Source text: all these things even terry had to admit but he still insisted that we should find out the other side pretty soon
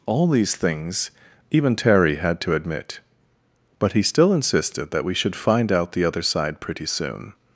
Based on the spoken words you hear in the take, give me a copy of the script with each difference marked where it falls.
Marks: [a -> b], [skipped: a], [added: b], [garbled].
all these things even terry had to admit but he still insisted that we should find out the other side pretty soon